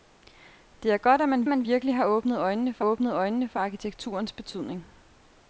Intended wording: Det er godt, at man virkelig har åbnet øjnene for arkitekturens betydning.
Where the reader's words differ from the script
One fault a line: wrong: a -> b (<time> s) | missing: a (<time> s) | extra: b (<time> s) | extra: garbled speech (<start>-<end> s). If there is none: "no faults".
extra: man (1.5 s)
extra: åbnet øjnene for (2.8 s)